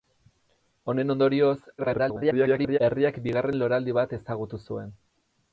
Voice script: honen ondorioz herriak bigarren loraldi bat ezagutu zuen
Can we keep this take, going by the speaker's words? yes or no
no